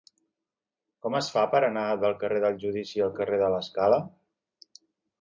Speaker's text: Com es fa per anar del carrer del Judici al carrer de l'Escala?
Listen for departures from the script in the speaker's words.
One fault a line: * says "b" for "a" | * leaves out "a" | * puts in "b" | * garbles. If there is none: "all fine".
all fine